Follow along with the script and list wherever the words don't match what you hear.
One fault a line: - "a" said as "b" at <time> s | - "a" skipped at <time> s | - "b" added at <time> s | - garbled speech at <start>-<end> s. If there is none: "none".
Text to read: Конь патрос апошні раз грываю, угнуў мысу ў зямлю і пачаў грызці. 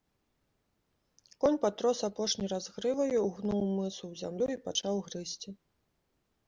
none